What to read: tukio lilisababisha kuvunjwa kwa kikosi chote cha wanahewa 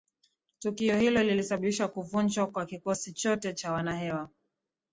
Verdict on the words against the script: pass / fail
fail